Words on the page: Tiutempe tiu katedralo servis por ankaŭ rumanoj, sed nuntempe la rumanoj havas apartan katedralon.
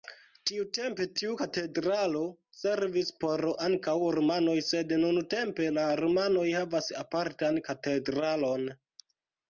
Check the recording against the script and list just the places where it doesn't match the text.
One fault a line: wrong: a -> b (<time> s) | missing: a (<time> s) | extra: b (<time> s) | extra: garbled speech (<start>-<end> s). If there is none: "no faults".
no faults